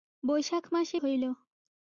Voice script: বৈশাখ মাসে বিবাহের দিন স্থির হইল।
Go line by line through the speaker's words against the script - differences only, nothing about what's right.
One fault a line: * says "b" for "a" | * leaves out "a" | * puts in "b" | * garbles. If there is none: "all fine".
* leaves out "বিবাহের দিন স্থির"